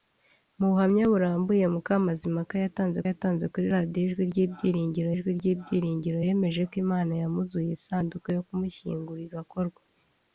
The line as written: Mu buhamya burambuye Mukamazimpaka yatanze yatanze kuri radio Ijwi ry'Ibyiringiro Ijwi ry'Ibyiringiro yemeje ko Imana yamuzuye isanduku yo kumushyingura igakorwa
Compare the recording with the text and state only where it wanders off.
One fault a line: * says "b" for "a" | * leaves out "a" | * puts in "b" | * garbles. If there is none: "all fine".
all fine